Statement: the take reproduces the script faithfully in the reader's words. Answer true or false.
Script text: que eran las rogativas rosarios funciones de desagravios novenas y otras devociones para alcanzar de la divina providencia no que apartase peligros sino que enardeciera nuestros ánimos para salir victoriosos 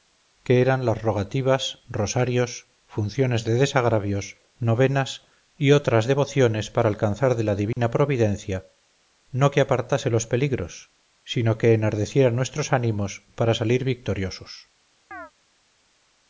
false